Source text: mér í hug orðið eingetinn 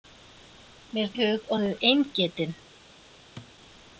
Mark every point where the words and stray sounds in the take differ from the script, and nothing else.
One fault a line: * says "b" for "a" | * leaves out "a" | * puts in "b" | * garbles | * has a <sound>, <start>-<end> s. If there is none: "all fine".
* has a thud, 3.4-3.5 s